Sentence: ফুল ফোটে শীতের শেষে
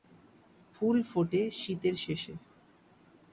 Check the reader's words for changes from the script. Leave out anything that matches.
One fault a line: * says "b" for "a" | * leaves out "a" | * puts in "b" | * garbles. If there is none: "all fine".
all fine